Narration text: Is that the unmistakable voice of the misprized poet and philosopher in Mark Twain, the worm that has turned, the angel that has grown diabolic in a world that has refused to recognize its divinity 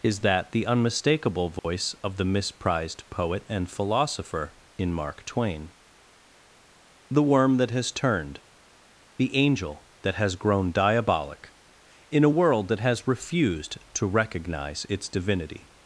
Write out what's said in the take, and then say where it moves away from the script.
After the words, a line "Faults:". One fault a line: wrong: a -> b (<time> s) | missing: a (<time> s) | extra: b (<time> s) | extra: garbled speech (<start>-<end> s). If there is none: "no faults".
Is that the unmistakable voice of the misprized poet and philosopher in Mark Twain, the worm that has turned, the angel that has grown diabolic in a world that has refused to recognize its divinity
Faults:
no faults